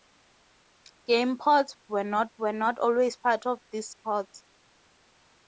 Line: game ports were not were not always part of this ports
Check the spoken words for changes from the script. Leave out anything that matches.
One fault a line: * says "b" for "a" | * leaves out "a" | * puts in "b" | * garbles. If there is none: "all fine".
all fine